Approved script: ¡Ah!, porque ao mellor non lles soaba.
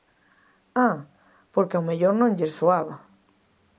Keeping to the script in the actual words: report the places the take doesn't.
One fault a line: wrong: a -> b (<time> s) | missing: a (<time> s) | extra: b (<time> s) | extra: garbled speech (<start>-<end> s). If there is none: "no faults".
no faults